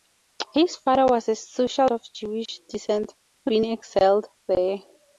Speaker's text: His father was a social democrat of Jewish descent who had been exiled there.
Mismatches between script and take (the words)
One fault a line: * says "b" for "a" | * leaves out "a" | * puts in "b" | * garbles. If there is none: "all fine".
* leaves out "democrat"
* leaves out "had"